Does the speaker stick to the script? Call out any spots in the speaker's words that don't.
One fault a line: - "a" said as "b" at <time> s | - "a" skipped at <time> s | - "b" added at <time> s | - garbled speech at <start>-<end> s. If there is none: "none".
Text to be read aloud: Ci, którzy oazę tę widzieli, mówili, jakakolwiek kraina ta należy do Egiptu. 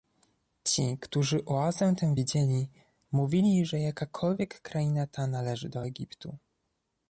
- "że" added at 3.6 s